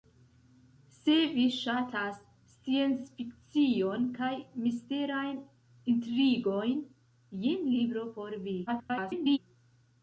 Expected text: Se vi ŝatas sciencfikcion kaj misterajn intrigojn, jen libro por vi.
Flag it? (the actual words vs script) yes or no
yes